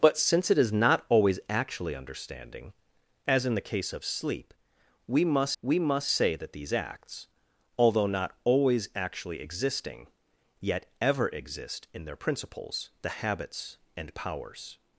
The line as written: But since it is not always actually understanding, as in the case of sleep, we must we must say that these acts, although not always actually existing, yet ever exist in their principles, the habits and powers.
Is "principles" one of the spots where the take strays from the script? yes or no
no